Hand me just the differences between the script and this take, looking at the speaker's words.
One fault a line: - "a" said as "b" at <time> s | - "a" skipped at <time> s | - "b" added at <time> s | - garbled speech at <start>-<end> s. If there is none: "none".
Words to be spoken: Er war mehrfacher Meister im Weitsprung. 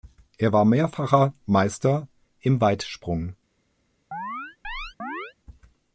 none